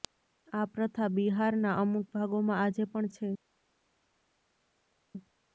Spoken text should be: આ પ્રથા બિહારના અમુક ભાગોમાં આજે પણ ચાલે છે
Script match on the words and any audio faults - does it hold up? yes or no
no